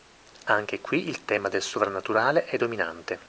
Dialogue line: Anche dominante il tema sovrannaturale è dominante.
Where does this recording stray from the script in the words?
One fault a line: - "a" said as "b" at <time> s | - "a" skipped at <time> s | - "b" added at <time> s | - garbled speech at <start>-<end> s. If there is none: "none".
- "dominante" said as "qui" at 0.8 s
- "del" added at 1.5 s